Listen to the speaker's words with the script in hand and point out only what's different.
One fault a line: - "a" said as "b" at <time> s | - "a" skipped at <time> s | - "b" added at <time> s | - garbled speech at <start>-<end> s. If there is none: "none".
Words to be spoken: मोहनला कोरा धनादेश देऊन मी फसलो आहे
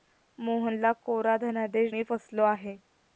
- "देऊन" skipped at 1.9 s